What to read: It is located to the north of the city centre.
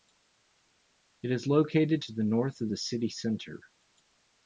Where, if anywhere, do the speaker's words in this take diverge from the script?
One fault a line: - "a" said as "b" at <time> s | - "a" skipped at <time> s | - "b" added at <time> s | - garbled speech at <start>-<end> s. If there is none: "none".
none